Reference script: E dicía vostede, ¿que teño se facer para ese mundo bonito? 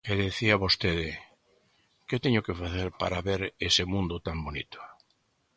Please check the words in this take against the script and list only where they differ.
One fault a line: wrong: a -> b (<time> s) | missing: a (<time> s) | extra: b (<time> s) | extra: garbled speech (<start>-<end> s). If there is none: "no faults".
wrong: se -> que (2.5 s)
extra: ver (3.3 s)
extra: tan (4.3 s)